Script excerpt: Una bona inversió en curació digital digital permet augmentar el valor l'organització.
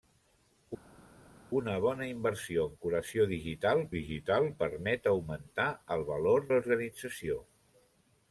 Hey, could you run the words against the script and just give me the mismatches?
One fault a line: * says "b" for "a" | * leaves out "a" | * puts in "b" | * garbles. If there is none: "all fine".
all fine